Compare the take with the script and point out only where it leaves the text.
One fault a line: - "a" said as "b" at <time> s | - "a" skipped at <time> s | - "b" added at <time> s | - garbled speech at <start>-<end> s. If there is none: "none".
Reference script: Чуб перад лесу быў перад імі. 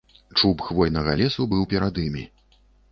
- "перад" said as "хвойнага" at 0.7 s